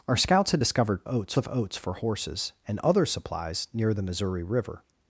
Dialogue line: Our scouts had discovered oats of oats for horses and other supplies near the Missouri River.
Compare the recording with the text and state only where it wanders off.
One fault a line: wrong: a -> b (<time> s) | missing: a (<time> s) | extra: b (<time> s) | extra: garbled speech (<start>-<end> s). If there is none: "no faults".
no faults